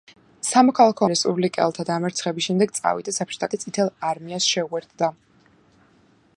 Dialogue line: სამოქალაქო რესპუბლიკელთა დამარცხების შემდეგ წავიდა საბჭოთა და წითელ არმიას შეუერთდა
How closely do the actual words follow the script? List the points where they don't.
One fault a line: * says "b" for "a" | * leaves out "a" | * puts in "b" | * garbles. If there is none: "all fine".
all fine